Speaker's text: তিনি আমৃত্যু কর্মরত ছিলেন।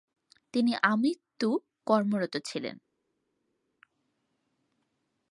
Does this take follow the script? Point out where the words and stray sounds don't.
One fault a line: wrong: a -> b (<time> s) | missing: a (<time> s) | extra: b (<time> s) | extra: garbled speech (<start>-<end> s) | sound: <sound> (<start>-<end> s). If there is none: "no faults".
no faults